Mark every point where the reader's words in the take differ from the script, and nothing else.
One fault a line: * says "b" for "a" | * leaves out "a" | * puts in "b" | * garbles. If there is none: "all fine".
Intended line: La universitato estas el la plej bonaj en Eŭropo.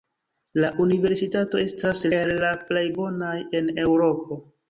all fine